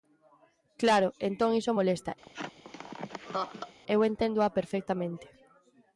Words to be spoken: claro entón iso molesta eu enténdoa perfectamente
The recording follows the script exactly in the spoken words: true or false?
true